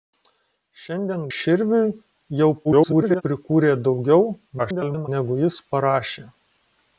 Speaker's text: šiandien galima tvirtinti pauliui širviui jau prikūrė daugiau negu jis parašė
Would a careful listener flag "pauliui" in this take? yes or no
yes